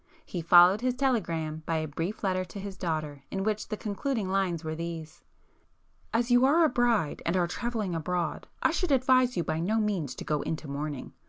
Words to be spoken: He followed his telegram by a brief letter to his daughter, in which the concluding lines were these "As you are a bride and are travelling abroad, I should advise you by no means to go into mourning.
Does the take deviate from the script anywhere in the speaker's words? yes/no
no